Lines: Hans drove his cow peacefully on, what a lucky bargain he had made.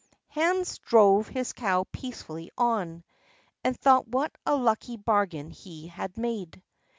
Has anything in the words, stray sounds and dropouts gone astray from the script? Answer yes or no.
yes